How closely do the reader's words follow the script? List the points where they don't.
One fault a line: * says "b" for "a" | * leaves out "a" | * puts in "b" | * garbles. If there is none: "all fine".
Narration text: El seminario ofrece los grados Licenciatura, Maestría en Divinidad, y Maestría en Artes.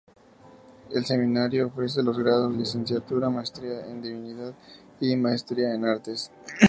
all fine